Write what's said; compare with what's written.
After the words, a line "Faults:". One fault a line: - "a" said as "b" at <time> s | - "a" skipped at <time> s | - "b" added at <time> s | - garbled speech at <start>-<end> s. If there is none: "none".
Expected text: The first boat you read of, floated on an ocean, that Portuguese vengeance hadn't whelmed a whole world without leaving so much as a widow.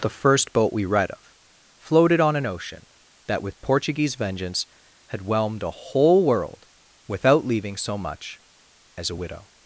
The first boat we read of, floated on an ocean, that with Portuguese vengeance had whelmed a whole world without leaving so much as a widow.
Faults:
- "you" said as "we" at 0.7 s
- "with" added at 3.4 s
- "hadn't" said as "had" at 5.1 s